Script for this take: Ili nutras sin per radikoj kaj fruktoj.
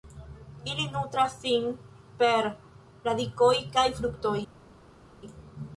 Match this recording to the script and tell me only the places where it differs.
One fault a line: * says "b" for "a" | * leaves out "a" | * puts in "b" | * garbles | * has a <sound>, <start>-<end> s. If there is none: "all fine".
all fine